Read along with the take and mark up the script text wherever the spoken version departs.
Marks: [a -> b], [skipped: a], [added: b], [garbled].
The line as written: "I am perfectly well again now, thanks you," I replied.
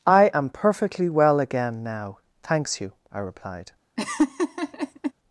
"I am perfectly well again now, thanks you," I replied.